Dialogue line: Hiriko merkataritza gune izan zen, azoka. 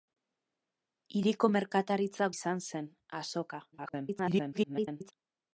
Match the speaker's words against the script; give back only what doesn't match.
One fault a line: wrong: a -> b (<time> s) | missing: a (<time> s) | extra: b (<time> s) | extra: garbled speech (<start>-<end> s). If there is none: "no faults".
missing: gune (2.3 s)
extra: garbled speech (3.7-5.1 s)